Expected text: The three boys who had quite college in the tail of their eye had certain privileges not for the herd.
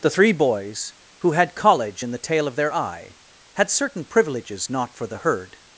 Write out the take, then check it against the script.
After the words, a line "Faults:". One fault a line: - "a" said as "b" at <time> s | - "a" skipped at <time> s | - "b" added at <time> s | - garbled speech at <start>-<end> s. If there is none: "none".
The three boys who had college in the tail of their eye had certain privileges not for the herd.
Faults:
- "quite" skipped at 1.6 s